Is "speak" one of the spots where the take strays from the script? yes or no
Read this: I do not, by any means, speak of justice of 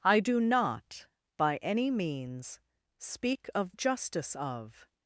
no